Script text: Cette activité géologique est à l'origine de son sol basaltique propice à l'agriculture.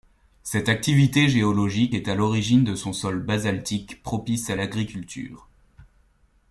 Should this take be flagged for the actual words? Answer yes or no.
no